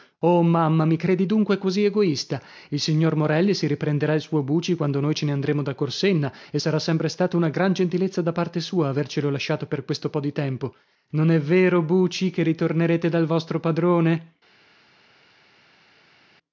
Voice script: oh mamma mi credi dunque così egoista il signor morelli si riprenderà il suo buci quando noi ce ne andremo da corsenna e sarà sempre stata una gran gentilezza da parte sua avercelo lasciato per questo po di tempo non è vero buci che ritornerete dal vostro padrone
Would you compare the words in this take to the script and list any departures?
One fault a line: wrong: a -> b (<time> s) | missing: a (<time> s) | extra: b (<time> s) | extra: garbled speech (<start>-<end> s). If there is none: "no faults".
no faults